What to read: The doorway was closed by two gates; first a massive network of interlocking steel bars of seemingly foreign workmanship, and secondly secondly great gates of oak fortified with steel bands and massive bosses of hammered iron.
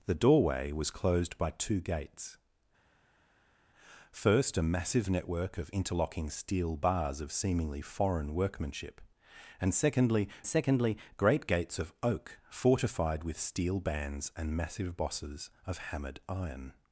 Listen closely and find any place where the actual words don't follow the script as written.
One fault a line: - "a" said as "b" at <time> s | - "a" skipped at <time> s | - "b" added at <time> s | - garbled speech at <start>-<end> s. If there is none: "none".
none